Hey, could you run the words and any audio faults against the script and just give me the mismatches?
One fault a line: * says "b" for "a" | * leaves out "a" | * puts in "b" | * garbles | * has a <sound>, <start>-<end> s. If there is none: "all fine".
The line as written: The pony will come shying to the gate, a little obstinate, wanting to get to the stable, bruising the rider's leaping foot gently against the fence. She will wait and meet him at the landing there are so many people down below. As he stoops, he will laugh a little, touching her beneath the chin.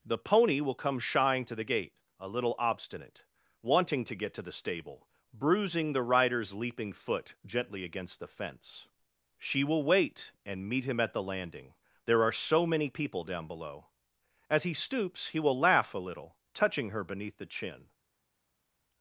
all fine